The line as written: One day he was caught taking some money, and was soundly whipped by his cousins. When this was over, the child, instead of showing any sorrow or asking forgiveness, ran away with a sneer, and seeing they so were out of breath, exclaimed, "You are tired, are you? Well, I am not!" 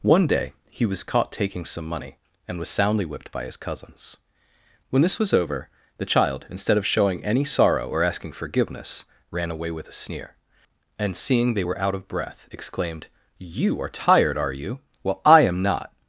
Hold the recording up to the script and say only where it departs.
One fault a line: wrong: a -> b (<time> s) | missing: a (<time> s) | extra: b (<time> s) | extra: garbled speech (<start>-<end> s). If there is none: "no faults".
missing: so (11.6 s)